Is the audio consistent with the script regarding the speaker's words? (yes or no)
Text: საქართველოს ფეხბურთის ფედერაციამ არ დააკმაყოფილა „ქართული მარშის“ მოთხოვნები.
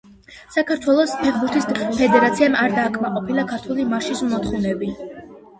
yes